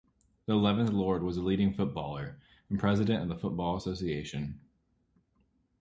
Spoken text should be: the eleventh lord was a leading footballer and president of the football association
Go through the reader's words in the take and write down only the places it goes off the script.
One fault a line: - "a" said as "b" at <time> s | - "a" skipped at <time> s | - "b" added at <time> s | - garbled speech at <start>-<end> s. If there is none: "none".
none